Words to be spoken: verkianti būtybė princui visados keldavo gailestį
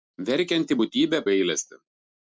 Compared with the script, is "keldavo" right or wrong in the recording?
wrong